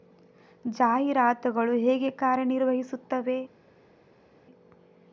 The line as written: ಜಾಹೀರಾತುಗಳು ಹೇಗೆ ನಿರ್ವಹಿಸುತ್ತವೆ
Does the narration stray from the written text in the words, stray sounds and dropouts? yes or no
yes